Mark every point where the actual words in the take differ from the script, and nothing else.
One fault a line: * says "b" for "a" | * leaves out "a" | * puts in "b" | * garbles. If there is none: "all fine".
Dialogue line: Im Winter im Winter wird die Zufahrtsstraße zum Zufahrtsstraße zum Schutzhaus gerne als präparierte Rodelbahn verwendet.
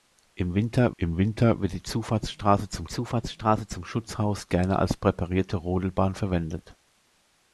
all fine